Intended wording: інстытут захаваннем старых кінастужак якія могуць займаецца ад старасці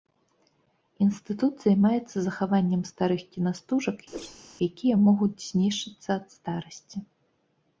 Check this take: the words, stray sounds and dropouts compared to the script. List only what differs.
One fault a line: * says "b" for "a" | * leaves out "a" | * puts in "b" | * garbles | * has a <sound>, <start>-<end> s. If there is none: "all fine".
* puts in "займаецца"
* has a whoosh, 4.1-4.4 s
* says "знішчыцца" for "займаецца"